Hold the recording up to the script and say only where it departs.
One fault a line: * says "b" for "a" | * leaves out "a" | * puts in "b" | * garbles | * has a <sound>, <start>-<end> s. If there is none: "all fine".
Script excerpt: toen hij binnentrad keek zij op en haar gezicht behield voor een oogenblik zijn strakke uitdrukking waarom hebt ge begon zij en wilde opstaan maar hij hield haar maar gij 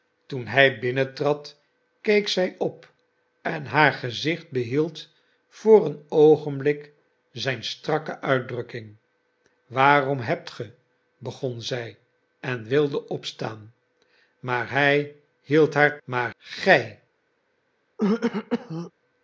* has a throat clearing, 18.0-18.9 s